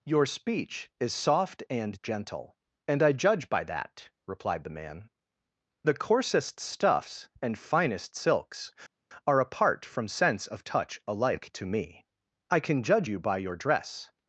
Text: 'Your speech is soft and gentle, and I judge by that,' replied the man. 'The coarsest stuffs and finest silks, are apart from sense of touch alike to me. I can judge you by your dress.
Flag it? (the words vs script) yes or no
no